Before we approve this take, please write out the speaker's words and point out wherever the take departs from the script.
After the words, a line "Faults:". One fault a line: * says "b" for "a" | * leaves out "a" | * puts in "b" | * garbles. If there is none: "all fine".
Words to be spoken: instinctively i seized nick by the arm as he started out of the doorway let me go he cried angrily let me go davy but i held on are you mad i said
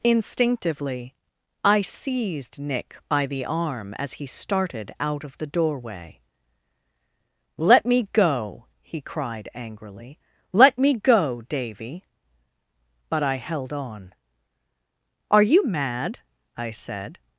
instinctively i seized nick by the arm as he started out of the doorway let me go he cried angrily let me go davy but i held on are you mad i said
Faults:
all fine